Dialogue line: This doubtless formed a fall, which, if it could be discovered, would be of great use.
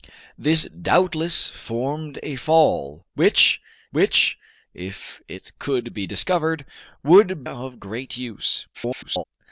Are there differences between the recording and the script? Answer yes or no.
yes